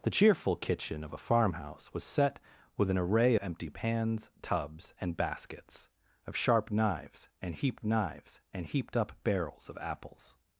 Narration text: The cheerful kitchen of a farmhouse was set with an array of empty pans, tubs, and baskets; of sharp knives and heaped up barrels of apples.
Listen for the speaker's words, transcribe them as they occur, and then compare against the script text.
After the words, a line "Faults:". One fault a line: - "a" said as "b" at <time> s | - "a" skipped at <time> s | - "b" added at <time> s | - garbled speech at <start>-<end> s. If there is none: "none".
The cheerful kitchen of a farmhouse was set with an array empty pans, tubs, and baskets; of sharp knives and heaped knives and heaped up barrels of apples.
Faults:
- "of" skipped at 3.4 s
- "knives and heaped" added at 7.8 s